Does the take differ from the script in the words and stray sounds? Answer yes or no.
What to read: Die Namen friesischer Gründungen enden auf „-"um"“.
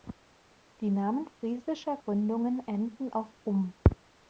no